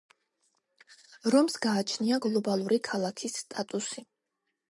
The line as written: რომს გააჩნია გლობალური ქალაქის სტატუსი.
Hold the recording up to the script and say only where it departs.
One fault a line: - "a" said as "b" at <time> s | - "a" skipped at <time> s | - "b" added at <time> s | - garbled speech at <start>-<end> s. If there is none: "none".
none